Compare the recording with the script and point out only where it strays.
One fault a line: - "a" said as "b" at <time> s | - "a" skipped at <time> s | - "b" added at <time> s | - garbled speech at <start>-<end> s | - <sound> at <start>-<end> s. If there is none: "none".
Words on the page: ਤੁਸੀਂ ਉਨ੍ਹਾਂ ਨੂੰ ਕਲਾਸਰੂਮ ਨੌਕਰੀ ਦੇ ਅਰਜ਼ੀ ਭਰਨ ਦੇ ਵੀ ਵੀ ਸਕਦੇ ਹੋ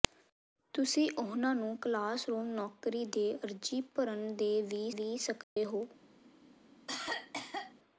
- dropout at 5.4-5.6 s
- cough at 6.9-7.7 s